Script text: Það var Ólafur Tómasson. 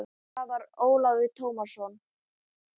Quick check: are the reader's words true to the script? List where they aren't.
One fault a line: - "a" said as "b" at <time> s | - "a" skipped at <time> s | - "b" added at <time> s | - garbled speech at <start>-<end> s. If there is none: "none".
none